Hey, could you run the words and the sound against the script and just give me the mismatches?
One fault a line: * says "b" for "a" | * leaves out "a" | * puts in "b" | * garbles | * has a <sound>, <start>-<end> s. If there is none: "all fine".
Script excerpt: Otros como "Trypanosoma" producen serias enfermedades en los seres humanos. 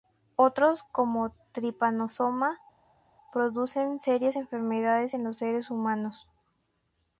all fine